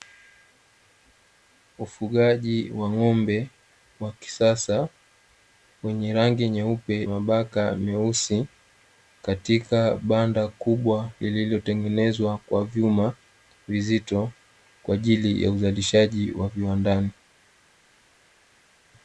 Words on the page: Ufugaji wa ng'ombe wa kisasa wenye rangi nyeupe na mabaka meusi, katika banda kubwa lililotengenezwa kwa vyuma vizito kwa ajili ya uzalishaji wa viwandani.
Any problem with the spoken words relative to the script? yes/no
yes